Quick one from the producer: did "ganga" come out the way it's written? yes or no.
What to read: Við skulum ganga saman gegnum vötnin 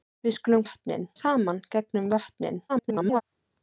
no